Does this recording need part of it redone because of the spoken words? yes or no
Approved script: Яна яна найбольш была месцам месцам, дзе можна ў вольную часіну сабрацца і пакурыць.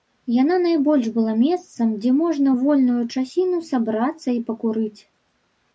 yes